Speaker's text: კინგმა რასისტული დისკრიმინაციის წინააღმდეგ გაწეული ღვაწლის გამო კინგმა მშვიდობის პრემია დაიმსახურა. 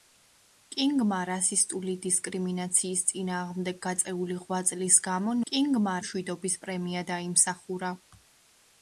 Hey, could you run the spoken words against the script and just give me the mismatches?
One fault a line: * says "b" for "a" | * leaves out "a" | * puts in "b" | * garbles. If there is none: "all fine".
all fine